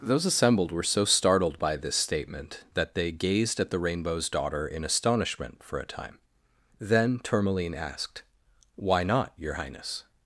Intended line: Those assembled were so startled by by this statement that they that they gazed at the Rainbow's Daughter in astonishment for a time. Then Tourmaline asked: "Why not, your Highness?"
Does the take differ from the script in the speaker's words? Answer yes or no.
yes